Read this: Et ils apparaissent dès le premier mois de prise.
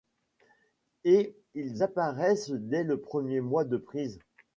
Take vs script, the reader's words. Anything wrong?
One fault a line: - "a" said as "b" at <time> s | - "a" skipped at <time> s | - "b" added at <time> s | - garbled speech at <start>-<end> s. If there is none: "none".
none